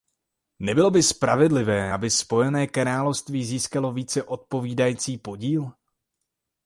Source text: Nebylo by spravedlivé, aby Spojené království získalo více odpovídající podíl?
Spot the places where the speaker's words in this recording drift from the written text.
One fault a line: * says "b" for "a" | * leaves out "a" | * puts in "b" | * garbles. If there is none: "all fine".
all fine